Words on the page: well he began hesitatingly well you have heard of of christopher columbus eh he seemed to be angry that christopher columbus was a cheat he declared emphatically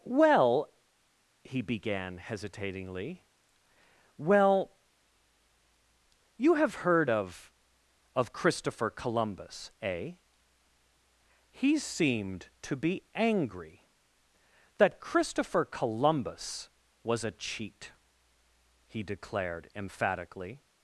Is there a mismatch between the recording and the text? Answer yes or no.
no